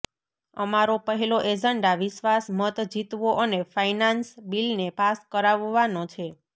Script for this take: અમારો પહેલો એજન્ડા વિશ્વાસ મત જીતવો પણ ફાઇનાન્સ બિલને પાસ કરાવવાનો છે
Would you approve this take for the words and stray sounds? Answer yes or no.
no